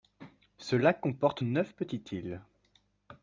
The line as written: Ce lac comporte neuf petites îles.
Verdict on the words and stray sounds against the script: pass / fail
pass